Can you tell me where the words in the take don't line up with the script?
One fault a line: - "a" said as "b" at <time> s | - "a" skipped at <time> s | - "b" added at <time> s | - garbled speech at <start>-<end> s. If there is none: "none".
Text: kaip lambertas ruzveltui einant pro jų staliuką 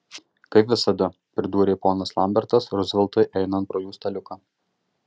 - "visada pridūrė ponas" added at 0.7 s